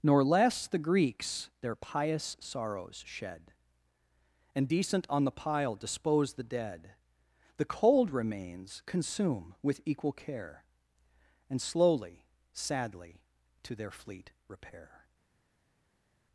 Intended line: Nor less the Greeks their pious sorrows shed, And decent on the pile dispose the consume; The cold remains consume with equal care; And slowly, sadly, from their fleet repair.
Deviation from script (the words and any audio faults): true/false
true